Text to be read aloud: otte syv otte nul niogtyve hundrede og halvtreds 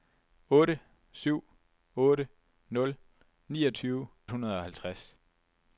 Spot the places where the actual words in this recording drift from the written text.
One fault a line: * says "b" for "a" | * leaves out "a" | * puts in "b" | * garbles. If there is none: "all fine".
all fine